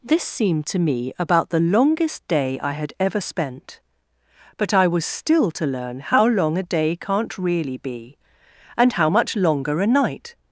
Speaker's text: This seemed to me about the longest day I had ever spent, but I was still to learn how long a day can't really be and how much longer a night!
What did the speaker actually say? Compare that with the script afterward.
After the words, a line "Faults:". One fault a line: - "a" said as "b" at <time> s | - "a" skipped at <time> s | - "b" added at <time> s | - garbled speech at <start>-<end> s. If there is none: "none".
This seemed to me about the longest day I had ever spent, but I was still to learn how long a day can't really be and how much longer a night!
Faults:
none